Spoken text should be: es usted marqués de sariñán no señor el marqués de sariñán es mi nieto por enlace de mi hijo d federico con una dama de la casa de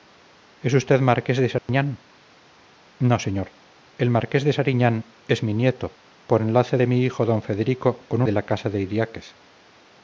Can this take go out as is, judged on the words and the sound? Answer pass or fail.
fail